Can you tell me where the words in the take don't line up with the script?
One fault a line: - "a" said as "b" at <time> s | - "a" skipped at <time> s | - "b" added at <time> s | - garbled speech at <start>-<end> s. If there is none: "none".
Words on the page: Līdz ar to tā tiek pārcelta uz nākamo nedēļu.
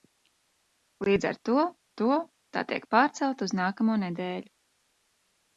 - "to" added at 2.0 s